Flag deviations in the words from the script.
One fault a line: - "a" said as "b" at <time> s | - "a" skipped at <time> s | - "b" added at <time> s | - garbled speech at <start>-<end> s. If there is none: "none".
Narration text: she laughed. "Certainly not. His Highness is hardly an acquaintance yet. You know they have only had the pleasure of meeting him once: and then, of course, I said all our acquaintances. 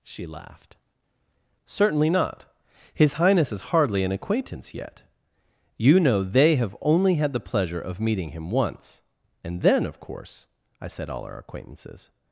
none